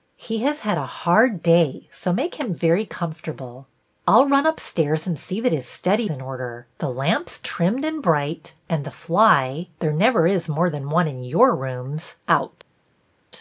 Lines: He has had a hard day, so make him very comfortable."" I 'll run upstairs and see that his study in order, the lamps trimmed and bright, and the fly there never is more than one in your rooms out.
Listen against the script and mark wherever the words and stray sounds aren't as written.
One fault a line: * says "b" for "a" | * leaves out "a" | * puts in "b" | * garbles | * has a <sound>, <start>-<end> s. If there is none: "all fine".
all fine